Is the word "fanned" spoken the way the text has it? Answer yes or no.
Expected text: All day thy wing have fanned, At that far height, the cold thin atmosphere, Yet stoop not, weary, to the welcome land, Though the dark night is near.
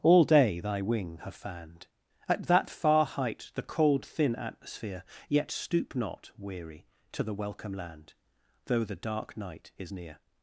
yes